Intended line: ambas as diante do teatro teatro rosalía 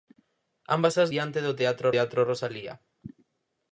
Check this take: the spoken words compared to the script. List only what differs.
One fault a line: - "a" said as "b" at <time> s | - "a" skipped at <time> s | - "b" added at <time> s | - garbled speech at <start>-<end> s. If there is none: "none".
none